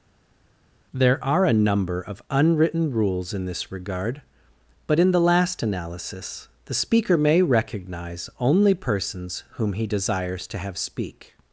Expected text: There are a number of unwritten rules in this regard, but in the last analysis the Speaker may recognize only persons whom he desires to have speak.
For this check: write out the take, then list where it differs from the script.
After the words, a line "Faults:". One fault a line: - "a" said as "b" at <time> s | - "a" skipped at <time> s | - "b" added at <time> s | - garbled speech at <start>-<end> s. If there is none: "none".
There are a number of unwritten rules in this regard, but in the last analysis the Speaker may recognize only persons whom he desires to have speak.
Faults:
none